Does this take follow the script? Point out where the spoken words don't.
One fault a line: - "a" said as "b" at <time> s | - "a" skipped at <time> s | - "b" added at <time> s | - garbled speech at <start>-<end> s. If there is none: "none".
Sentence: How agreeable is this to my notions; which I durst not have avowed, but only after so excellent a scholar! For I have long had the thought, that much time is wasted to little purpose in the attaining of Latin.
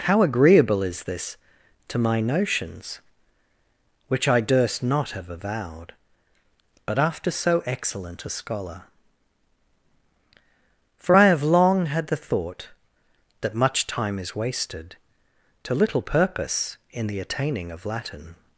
- "only" skipped at 7.0 s